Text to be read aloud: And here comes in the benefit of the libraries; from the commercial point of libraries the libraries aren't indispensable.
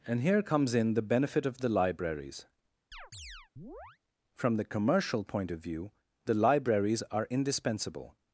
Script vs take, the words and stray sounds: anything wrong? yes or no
yes